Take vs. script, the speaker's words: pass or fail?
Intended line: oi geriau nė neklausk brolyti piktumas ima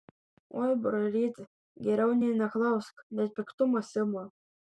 fail